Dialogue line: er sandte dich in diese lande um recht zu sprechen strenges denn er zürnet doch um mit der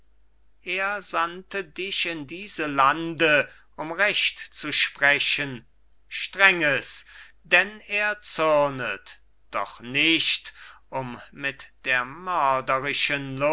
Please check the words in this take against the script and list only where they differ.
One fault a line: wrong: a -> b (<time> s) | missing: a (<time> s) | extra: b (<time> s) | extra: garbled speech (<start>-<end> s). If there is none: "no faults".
extra: nicht (9.8 s)